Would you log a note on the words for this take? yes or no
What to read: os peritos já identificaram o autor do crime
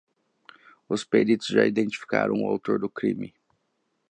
no